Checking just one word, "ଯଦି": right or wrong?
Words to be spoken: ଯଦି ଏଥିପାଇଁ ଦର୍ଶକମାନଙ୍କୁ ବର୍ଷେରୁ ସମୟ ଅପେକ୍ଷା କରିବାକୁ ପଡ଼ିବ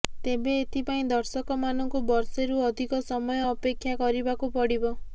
wrong